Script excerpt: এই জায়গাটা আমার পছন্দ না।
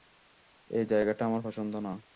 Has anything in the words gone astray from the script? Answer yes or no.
no